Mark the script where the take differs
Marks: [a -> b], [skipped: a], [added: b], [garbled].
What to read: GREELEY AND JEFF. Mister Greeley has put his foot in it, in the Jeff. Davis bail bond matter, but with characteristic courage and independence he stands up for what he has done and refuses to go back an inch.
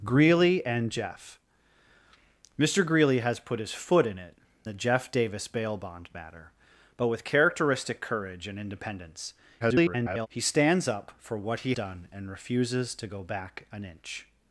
GREELEY AND JEFF. Mister Greeley has put his foot in it, [skipped: in] the Jeff. Davis bail bond matter, but with characteristic courage and independence [garbled] he stands up for what he [skipped: has] done and refuses to go back an inch.